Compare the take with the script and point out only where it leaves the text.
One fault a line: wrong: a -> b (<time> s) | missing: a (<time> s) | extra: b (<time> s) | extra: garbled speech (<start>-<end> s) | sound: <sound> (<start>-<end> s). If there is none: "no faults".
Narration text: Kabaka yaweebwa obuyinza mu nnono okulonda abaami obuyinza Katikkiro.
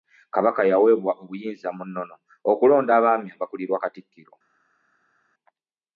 wrong: obuyinza -> abakulirwa (3.4 s)